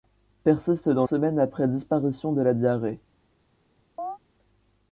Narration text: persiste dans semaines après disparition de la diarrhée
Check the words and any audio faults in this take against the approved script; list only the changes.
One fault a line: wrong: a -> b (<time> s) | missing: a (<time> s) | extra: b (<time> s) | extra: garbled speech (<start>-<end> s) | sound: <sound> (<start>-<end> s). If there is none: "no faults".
sound: chirp (4.0-4.2 s)